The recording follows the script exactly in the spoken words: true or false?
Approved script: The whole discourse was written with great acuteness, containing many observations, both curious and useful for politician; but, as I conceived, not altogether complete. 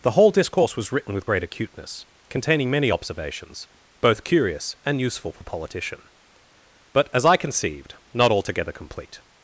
true